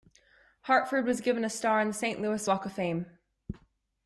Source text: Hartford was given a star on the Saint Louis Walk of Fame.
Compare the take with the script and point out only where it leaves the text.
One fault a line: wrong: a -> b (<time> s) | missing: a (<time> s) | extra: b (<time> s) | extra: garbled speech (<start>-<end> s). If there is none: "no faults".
no faults